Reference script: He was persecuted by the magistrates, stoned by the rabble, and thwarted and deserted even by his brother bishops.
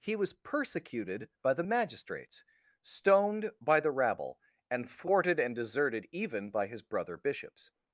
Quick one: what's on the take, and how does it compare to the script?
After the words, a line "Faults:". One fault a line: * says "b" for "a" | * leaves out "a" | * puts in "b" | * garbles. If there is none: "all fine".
He was persecuted by the magistrates, stoned by the rabble, and thwarted and deserted even by his brother bishops.
Faults:
all fine